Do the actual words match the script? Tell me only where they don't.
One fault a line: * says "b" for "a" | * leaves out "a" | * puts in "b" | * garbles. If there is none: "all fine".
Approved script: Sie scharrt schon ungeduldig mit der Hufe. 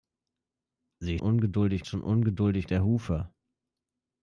* says "ungeduldig" for "scharrt"
* leaves out "mit"